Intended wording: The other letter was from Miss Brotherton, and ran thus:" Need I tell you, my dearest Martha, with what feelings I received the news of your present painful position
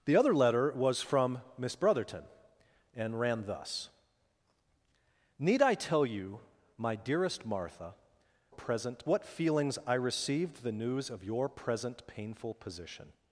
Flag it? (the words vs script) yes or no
yes